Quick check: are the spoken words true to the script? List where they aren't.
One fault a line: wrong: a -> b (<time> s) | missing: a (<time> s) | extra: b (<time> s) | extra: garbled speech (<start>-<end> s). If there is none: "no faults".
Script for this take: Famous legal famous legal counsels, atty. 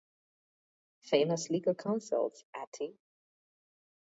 missing: famous legal (1.8 s)